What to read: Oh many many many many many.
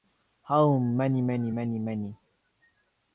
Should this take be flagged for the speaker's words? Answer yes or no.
yes